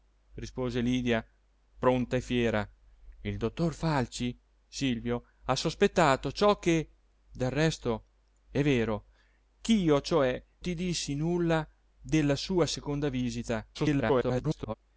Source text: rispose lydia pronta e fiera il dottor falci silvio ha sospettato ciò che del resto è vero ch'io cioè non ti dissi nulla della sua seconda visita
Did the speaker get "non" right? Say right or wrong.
wrong